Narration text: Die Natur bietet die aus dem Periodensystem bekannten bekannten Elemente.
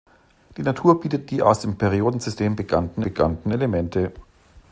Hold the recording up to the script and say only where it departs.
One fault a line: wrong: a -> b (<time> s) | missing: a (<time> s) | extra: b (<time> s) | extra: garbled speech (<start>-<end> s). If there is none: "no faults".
no faults